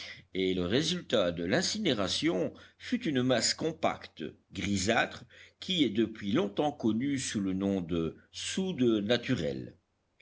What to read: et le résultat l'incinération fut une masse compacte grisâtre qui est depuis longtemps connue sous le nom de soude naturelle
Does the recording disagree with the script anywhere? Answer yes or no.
yes